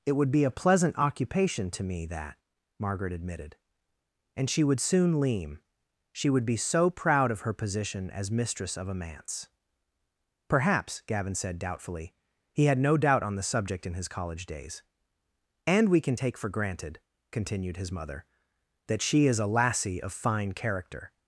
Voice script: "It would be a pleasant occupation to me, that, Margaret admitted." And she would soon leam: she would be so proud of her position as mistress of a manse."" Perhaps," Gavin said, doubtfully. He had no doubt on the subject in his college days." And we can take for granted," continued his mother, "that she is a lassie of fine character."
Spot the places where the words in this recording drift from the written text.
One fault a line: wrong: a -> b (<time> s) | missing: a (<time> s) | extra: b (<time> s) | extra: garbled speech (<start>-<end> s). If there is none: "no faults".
no faults